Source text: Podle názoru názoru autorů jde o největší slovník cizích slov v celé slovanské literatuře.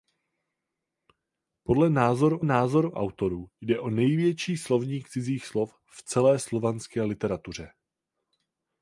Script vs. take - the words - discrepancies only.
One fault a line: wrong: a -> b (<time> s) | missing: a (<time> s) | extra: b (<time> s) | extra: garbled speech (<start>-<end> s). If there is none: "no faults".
no faults